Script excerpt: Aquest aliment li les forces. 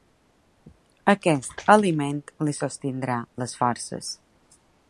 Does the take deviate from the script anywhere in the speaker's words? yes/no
yes